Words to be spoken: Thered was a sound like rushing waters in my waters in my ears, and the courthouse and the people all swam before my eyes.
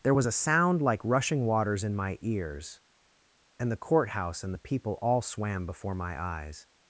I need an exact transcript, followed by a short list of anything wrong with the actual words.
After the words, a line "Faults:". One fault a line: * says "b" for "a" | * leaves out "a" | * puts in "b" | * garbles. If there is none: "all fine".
There was a sound like rushing waters in my ears, and the courthouse and the people all swam before my eyes.
Faults:
* says "There" for "Thered"
* leaves out "waters in my"